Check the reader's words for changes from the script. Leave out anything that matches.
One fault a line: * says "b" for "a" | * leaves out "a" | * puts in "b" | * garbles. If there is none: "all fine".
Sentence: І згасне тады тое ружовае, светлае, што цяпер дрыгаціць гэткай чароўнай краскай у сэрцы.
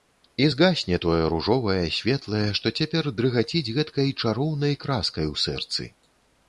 * leaves out "тады"